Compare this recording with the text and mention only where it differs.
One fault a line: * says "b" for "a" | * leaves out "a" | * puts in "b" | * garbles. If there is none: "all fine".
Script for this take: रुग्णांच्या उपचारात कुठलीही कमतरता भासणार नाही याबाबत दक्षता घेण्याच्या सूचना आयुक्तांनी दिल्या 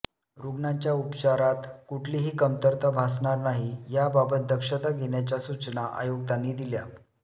all fine